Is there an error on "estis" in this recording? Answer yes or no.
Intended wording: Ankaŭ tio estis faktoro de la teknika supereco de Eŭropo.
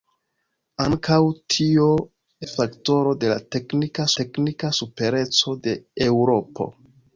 yes